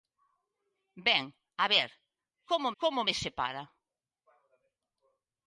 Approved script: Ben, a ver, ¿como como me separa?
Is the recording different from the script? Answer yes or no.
no